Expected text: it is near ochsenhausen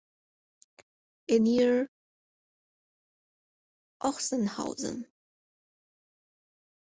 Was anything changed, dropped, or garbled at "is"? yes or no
yes